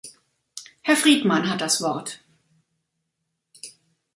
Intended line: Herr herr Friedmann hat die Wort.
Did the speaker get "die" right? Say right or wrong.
wrong